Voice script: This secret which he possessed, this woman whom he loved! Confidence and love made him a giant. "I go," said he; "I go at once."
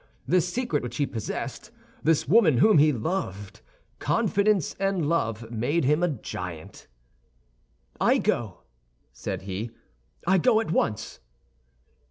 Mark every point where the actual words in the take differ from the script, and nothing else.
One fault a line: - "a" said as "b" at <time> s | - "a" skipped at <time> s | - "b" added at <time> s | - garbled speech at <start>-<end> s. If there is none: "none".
none